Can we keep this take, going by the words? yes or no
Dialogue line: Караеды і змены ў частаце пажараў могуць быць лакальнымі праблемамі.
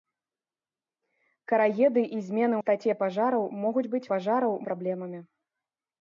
no